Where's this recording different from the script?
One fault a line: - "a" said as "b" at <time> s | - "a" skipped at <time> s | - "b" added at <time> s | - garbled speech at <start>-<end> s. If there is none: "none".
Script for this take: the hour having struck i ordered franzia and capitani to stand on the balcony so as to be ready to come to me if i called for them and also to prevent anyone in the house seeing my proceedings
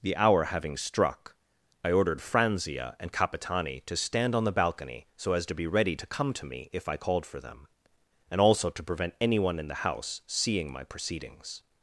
none